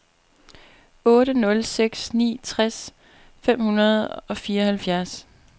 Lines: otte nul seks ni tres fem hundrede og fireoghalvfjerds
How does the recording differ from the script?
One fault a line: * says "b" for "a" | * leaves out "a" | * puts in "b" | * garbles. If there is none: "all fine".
all fine